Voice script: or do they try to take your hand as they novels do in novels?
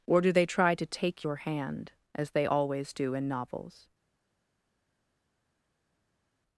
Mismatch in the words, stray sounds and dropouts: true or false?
true